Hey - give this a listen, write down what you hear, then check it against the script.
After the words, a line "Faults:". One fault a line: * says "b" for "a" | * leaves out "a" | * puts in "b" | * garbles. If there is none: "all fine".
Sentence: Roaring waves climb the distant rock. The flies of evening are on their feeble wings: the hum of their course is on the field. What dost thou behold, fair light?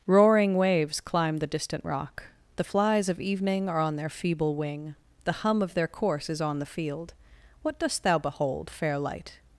Roaring waves climb the distant rock. The flies of evening are on their feeble wing: the hum of their course is on the field. What dost thou behold, fair light?
Faults:
* says "wing" for "wings"